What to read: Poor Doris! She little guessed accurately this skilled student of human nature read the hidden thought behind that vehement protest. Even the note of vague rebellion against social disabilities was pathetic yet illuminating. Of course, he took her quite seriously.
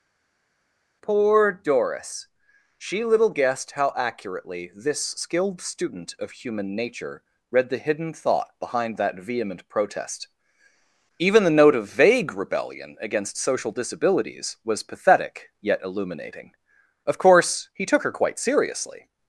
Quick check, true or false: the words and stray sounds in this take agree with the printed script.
false